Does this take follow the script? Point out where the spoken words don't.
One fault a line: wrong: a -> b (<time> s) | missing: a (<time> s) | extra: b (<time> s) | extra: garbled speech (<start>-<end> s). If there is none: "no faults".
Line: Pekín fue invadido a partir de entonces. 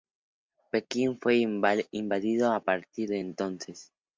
no faults